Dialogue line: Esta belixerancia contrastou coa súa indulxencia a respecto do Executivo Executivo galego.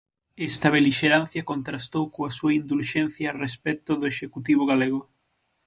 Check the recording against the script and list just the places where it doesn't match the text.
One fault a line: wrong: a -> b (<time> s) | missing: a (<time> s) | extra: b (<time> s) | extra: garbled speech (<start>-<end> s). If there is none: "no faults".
missing: Executivo (4.6 s)